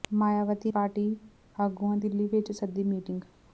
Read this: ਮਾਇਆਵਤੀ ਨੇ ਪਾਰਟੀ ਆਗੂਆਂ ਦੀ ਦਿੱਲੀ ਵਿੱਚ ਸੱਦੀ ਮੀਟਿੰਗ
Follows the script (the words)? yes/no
no